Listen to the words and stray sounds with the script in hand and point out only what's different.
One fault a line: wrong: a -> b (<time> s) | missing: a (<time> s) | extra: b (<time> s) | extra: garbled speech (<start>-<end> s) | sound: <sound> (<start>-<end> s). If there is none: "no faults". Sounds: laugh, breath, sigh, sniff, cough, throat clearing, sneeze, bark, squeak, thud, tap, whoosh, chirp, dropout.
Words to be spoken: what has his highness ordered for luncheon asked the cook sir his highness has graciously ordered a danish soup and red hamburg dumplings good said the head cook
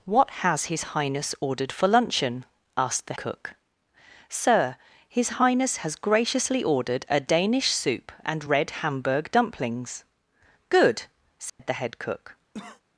sound: dropout (11.5-11.6 s)
sound: cough (12.5-12.8 s)